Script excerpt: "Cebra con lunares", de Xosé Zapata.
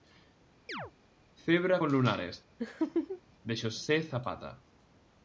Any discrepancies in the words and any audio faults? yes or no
yes